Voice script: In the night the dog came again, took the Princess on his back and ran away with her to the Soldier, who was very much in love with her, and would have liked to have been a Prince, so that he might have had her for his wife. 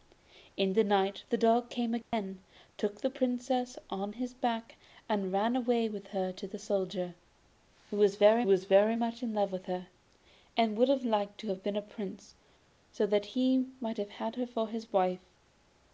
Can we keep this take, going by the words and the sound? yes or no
no